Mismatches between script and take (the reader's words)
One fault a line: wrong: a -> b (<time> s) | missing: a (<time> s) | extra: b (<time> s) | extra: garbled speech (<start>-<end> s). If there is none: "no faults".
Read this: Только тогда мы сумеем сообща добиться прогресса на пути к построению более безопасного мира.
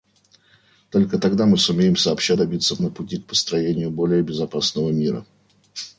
missing: прогресса (2.8 s)